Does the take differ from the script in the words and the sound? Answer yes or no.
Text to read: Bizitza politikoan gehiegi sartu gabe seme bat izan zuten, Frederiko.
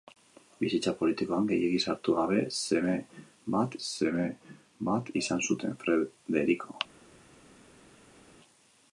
yes